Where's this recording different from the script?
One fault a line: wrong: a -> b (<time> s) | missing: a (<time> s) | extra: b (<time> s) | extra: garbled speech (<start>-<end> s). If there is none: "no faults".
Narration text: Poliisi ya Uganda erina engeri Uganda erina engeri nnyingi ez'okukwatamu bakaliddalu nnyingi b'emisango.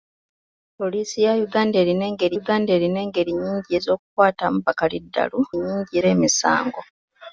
no faults